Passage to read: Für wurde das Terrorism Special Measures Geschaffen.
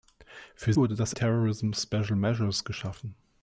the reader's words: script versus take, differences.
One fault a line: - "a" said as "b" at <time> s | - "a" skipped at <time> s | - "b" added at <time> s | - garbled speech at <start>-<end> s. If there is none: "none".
none